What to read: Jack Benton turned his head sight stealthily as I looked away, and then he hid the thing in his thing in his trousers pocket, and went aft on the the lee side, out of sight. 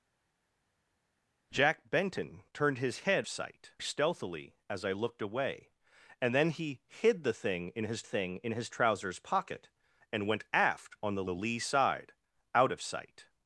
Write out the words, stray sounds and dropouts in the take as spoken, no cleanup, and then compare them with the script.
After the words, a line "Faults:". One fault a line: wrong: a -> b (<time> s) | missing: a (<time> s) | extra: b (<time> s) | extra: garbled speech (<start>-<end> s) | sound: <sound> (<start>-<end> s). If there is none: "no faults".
Jack Benton turned his head sight stealthily as I looked away, and then he hid the thing in his thing in his trousers pocket, and went aft on the the lee side, out of sight.
Faults:
no faults